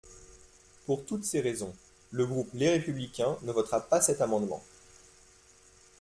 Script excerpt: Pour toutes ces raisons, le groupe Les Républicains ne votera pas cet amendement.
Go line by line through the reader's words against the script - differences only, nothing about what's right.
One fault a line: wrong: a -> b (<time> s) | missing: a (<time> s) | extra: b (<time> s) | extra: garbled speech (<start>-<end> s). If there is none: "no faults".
no faults